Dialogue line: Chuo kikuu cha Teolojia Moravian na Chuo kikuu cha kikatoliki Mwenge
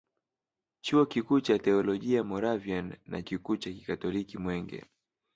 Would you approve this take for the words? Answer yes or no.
no